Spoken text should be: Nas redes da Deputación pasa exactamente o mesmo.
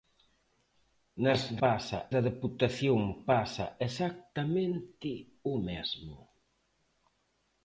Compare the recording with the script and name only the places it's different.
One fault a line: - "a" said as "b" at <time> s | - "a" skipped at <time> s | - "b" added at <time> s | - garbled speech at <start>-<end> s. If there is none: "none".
- "redes" said as "pasa" at 1.6 s